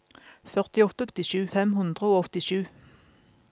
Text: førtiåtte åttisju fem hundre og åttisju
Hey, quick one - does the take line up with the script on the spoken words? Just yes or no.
yes